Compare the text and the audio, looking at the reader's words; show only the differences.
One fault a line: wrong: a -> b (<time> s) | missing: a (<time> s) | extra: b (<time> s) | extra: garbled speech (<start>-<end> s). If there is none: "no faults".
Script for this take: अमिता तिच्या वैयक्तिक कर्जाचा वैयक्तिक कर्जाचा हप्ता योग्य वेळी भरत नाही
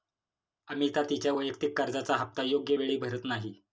missing: वैयक्तिक कर्जाचा (2.1 s)